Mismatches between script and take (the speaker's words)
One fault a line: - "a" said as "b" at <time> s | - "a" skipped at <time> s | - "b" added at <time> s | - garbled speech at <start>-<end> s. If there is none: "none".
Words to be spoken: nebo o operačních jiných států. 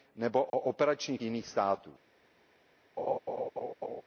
none